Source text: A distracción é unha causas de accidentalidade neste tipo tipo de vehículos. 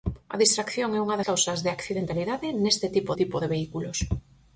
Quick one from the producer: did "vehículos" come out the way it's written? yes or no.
yes